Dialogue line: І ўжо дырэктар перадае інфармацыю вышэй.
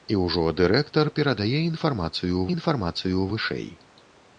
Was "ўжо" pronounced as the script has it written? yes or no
yes